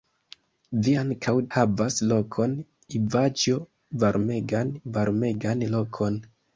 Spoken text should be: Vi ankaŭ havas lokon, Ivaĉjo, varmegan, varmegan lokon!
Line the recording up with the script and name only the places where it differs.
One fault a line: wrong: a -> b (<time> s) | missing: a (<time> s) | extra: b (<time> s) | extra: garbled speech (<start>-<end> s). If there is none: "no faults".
no faults